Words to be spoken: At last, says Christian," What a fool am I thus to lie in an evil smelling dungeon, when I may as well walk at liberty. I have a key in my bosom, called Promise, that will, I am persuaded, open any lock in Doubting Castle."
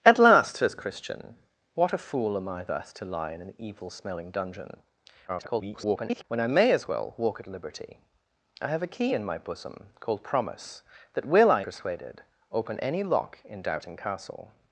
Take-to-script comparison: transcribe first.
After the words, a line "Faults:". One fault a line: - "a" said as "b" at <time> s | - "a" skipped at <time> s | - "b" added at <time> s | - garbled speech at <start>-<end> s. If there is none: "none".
At last, says Christian," What a fool am I thus to lie in an evil smelling dungeon, [garbled] when I may as well walk at liberty. I have a key in my bosom, called Promise, that will, I persuaded, open any lock in Doubting Castle."
Faults:
- garbled speech at 5.3-6.2 s
- "am" skipped at 11.6 s